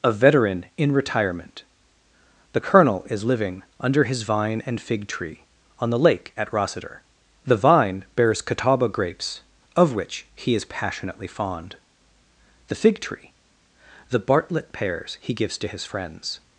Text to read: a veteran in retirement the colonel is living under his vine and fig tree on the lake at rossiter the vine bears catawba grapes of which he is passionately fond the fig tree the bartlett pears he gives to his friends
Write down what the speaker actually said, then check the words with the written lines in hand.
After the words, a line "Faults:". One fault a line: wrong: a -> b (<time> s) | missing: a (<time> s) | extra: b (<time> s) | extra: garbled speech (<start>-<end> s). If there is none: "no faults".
a veteran in retirement the colonel is living under his vine and fig tree on the lake at rossiter the vine bears catawba grapes of which he is passionately fond the fig tree the bartlett pears he gives to his friends
Faults:
no faults